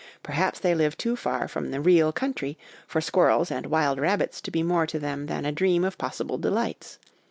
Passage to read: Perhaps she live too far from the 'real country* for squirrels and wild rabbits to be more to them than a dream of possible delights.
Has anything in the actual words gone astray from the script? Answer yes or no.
yes